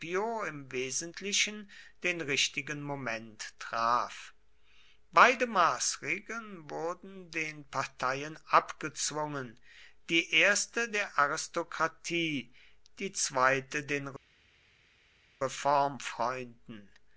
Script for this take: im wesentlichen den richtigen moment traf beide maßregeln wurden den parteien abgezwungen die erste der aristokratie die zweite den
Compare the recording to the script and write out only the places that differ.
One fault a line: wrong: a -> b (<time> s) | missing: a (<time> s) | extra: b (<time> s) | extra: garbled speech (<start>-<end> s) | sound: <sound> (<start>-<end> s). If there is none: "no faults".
no faults